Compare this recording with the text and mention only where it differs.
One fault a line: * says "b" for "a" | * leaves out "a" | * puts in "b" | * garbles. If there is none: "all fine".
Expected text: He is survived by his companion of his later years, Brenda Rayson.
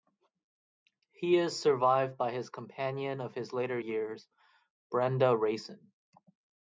all fine